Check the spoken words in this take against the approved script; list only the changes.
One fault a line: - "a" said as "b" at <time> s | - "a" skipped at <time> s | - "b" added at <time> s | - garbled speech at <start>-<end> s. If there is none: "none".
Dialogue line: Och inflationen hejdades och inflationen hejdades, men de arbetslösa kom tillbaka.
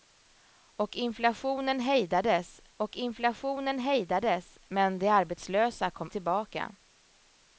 none